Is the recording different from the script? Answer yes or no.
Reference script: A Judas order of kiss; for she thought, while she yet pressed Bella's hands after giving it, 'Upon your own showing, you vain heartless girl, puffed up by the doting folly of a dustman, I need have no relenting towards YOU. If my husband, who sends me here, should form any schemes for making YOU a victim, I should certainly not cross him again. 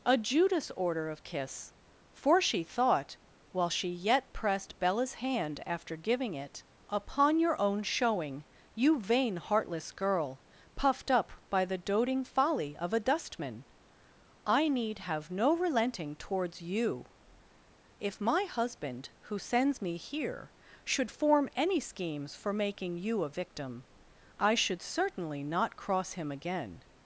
yes